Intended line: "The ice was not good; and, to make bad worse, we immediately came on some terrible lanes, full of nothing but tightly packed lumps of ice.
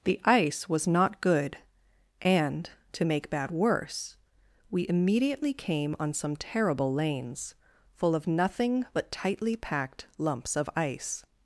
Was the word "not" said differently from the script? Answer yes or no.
no